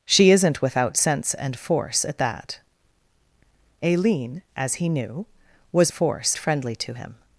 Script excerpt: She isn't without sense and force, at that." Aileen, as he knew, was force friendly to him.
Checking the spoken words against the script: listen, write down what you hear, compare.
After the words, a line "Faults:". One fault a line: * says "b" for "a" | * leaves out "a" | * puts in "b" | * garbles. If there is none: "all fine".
She isn't without sense and force, at that." Aileen, as he knew, was force friendly to him.
Faults:
all fine